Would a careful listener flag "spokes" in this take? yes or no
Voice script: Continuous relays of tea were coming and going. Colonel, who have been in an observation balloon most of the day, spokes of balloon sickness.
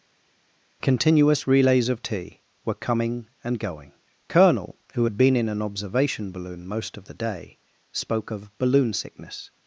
yes